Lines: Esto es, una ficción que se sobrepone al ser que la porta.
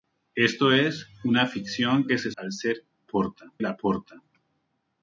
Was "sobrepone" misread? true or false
true